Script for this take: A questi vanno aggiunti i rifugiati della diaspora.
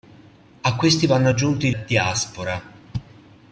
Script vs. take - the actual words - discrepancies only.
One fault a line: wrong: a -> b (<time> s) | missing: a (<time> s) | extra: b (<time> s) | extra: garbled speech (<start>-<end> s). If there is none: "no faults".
missing: rifugiati della (1.7 s)